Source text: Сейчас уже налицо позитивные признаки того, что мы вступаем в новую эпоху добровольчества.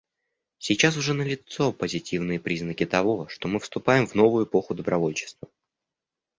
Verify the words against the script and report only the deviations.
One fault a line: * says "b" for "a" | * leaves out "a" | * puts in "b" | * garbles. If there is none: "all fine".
all fine